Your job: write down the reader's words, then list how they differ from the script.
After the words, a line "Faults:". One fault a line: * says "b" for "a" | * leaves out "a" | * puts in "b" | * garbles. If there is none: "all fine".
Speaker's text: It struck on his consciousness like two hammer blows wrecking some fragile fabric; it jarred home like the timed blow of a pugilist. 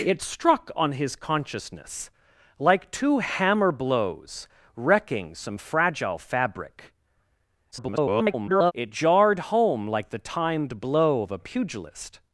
It struck on his consciousness like two hammer blows wrecking some fragile fabric; [garbled] it jarred home like the timed blow of a pugilist.
Faults:
* garbles